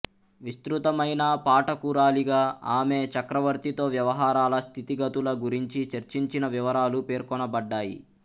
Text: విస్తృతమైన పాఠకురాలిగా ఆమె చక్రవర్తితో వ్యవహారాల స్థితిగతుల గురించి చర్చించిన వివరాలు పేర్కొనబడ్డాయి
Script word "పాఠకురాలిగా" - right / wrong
right